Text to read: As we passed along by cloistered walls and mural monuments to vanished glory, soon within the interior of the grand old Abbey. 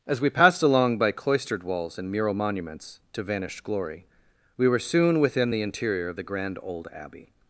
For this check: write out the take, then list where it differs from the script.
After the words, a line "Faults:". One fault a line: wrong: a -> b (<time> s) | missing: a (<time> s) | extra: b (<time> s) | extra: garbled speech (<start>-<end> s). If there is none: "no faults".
As we passed along by cloistered walls and mural monuments to vanished glory, we were soon within the interior of the grand old Abbey.
Faults:
extra: we were (4.6 s)